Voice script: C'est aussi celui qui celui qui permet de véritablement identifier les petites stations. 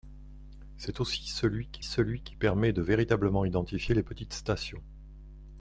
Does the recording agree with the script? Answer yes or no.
yes